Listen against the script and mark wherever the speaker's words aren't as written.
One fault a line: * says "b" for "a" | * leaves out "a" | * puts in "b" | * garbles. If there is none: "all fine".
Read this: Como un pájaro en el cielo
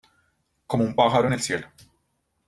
all fine